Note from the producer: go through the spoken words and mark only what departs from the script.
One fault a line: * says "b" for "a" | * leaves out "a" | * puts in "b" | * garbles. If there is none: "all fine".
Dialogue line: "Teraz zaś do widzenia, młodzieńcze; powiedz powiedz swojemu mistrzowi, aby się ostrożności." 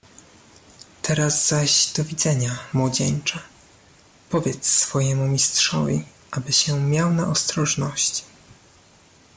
* leaves out "powiedz"
* puts in "miał na"